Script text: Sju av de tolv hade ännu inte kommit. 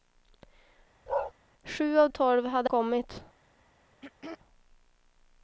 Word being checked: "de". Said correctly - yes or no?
no